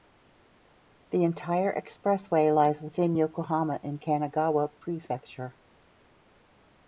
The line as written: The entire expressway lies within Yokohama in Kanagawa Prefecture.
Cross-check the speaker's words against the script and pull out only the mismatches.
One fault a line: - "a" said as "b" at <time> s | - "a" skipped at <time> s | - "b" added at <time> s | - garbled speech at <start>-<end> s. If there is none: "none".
none